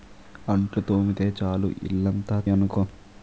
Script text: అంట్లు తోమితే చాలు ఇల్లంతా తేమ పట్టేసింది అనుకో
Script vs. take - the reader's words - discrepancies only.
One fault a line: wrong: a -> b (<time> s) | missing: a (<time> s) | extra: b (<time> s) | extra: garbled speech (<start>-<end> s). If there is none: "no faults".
missing: తేమ పట్టేసింది (2.4 s)